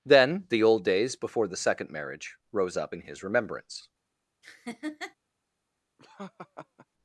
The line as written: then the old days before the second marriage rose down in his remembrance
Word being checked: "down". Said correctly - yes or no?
no